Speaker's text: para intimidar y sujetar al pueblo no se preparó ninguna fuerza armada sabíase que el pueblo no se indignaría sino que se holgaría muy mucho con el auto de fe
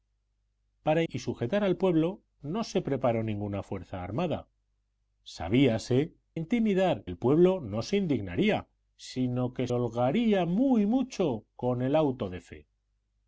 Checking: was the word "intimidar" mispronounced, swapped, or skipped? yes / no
yes